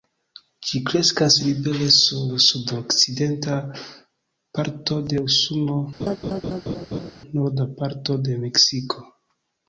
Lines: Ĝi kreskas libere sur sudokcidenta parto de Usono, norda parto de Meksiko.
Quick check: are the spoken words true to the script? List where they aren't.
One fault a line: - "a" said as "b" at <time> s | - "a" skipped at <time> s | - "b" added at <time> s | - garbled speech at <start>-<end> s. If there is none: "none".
none